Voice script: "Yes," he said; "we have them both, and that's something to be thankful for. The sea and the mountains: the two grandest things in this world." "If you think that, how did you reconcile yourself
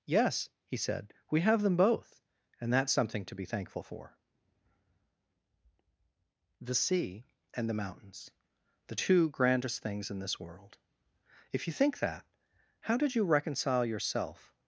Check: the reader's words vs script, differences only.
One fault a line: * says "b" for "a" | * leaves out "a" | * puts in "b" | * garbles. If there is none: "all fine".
all fine